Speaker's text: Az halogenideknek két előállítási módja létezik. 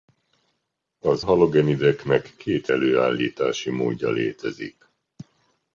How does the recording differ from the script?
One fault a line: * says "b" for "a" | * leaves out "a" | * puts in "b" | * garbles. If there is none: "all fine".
all fine